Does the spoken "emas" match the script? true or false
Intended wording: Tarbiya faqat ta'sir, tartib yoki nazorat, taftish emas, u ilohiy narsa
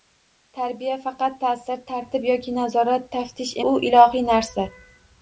false